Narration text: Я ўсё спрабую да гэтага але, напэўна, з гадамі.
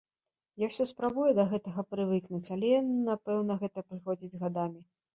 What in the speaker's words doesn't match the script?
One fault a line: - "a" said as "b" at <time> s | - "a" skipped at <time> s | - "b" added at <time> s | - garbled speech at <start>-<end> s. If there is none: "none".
- "прывыкнуць" added at 1.9 s
- "гэта прыходзіць" added at 3.6 s